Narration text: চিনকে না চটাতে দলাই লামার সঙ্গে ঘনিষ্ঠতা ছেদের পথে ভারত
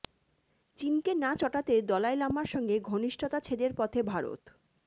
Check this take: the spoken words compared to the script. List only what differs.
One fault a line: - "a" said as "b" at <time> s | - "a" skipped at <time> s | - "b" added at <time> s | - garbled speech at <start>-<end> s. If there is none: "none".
none